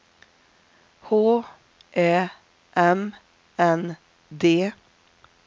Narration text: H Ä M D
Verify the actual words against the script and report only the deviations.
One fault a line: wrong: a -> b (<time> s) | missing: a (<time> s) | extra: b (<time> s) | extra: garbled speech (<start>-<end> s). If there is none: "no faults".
extra: N (3.6 s)